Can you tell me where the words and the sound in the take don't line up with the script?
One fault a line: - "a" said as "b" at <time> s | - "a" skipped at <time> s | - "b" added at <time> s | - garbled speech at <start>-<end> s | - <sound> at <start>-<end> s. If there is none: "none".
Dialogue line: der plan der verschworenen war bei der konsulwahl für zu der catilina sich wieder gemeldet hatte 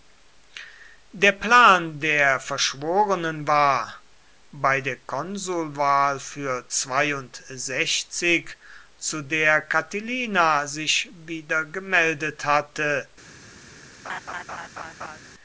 - laugh at 14.0-15.2 s